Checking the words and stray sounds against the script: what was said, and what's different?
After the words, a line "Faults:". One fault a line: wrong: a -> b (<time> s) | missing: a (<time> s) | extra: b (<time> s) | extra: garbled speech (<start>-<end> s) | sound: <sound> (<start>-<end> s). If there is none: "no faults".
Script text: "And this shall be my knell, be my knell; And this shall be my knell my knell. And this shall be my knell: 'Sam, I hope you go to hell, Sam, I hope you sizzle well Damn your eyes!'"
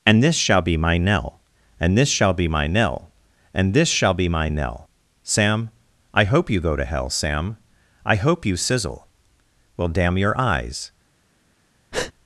"And this shall be my knell; And this shall be my knell. And this shall be my knell: 'Sam, I hope you go to hell, Sam, I hope you sizzle well Damn your eyes!'"
Faults:
missing: be my knell (1.4 s)
missing: my knell (3.1 s)
sound: breath (11.9-12.1 s)